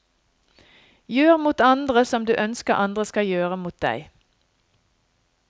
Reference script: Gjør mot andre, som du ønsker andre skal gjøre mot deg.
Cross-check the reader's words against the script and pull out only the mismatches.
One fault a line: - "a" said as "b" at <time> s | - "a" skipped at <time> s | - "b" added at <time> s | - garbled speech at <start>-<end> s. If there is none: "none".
none